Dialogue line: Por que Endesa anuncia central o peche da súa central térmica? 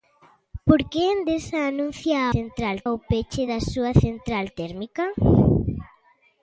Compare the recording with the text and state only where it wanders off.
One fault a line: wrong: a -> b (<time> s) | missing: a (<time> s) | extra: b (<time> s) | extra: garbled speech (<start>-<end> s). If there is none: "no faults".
no faults